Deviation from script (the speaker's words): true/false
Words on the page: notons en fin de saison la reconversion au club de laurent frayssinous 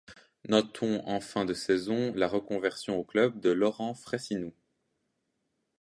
false